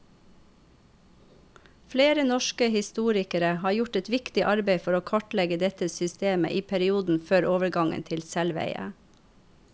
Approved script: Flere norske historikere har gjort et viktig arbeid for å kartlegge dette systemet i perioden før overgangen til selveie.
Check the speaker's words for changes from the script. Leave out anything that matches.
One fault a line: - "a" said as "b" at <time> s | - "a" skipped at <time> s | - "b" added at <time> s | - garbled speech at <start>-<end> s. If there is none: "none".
none